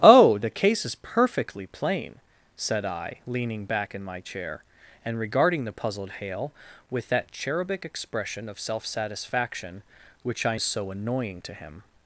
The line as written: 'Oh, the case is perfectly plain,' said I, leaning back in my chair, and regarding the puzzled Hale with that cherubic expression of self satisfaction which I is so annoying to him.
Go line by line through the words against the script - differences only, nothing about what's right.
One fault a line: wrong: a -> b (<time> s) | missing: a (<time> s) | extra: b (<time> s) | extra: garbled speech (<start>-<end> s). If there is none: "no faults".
no faults